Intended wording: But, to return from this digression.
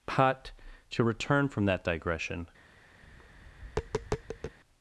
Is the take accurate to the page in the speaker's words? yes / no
no